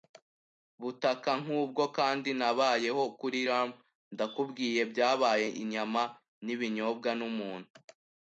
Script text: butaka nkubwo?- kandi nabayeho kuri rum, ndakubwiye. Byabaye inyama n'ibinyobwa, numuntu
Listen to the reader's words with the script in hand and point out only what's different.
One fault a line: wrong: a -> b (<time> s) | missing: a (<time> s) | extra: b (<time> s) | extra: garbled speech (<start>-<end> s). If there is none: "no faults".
no faults